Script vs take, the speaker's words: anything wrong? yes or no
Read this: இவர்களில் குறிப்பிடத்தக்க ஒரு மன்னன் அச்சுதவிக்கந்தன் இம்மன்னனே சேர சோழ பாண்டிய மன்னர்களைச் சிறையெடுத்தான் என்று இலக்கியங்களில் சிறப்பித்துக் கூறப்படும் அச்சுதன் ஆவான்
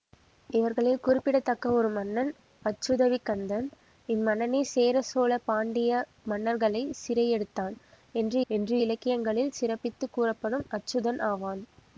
yes